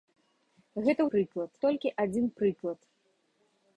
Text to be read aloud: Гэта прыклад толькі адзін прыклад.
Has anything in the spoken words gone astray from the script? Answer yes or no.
no